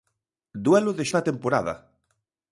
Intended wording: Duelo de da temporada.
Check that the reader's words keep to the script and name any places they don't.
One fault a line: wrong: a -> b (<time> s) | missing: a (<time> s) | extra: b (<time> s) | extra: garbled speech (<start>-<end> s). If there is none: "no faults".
no faults